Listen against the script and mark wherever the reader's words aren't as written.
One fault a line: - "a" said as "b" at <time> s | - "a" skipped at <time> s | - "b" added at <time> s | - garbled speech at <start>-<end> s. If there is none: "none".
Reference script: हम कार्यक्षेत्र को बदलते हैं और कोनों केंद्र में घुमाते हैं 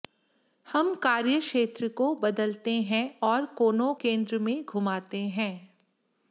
none